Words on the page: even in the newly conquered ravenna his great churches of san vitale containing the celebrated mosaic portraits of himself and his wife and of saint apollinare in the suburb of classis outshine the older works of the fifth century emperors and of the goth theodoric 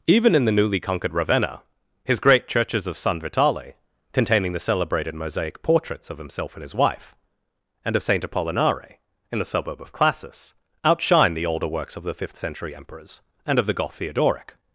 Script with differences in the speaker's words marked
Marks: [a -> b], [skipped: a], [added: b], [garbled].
even in the newly conquered ravenna his great churches of san vitale containing the celebrated mosaic portraits of himself and his wife and of saint apollinare in the suburb of classis outshine the older works of the fifth century emperors and of the goth theodoric